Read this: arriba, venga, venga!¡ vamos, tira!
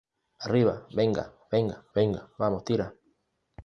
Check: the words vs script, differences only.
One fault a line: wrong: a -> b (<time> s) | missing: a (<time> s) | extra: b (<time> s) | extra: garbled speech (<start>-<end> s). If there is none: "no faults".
extra: venga (1.9 s)